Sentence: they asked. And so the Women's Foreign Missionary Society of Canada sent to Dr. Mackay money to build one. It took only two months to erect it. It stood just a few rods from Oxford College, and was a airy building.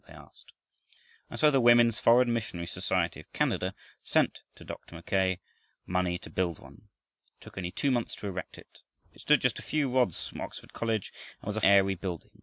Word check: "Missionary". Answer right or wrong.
right